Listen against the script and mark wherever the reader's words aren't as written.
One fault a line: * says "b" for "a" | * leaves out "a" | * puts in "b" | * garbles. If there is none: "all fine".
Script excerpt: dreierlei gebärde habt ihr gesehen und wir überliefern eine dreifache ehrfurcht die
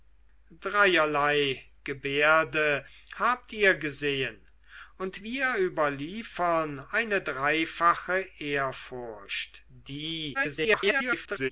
* garbles